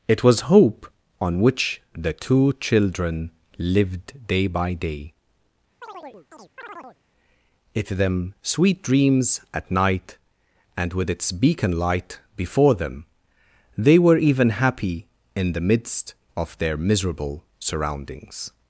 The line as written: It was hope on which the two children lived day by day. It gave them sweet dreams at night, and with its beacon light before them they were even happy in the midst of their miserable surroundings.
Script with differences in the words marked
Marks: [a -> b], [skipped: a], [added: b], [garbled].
It was hope on which the two children lived day by day. It [skipped: gave] them sweet dreams at night, and with its beacon light before them they were even happy in the midst of their miserable surroundings.